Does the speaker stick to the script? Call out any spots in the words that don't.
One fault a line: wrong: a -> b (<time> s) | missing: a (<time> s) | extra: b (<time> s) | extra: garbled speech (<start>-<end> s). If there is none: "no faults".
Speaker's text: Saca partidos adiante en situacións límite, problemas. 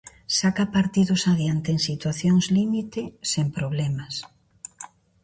extra: sen (3.3 s)